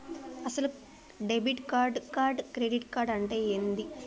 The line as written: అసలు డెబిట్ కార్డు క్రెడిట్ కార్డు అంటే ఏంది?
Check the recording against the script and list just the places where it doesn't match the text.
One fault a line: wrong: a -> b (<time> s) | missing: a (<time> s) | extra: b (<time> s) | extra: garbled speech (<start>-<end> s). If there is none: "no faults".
extra: కార్డు (2.2 s)